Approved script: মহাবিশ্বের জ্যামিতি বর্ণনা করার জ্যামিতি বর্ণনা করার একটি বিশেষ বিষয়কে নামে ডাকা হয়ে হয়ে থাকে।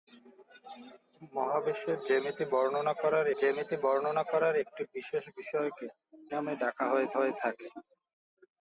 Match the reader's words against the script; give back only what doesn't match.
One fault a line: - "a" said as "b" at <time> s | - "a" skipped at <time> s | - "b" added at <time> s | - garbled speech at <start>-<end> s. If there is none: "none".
none